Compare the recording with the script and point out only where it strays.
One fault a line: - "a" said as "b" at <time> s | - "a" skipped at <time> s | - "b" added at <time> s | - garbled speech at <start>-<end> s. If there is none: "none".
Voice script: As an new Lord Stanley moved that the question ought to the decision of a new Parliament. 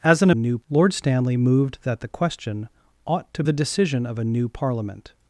none